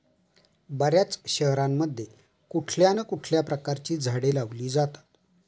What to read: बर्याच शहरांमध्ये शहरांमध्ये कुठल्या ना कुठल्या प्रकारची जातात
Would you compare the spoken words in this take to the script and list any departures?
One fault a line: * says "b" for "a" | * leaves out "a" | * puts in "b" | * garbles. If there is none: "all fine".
* leaves out "शहरांमध्ये"
* puts in "झाडे लावली"